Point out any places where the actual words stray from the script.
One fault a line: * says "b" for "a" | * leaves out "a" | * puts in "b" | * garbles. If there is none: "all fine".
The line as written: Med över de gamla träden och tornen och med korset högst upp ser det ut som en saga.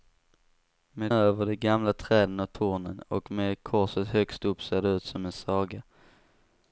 all fine